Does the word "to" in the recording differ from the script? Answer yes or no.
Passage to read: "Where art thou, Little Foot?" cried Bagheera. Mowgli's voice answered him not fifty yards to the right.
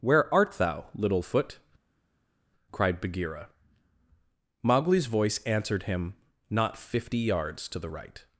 no